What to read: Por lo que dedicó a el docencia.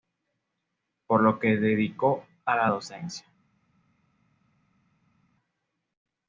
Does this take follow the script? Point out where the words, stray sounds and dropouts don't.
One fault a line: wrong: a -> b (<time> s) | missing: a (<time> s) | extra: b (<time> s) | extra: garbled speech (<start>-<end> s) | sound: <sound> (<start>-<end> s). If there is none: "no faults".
wrong: el -> la (2.5 s)